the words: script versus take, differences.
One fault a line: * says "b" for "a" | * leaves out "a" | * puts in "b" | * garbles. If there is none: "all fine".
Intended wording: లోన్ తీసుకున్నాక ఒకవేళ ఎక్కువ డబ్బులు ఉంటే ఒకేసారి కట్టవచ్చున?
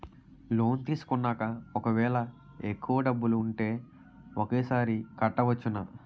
all fine